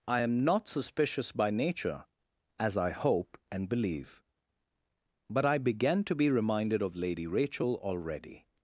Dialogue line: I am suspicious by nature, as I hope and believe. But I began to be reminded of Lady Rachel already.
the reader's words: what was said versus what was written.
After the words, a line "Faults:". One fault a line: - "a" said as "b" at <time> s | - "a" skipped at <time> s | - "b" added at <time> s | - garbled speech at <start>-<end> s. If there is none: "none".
I am not suspicious by nature, as I hope and believe. But I began to be reminded of Lady Rachel already.
Faults:
- "not" added at 0.4 s